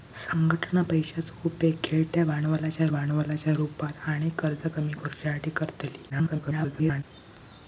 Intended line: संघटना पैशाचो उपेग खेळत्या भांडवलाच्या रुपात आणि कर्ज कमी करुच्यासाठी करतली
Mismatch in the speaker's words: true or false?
true